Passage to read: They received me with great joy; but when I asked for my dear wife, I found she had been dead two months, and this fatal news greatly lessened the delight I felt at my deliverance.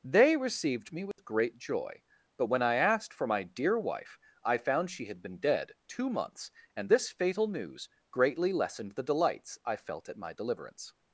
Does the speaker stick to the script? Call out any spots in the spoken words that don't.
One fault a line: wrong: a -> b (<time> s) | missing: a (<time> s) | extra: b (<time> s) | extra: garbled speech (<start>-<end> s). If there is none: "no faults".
wrong: delight -> delights (9.0 s)